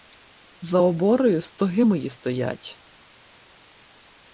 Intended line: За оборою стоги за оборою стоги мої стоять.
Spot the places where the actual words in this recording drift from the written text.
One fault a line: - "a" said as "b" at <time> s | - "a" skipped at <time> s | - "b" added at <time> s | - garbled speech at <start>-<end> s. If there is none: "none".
- "за оборою стоги" skipped at 1.8 s